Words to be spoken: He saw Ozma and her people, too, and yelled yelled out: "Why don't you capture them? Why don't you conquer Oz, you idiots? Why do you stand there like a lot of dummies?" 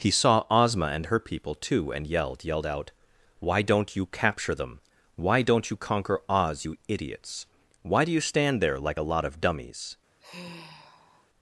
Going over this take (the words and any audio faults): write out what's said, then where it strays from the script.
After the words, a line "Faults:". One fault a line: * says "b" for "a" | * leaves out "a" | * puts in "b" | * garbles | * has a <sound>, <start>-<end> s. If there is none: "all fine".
He saw Ozma and her people, too, and yelled yelled out: "Why don't you capture them? Why don't you conquer Oz, you idiots? Why do you stand there like a lot of dummies?"
Faults:
* has a sigh, 10.2-11.3 s